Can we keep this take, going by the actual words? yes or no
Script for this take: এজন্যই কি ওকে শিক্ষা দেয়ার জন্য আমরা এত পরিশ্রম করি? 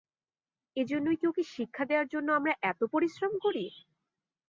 yes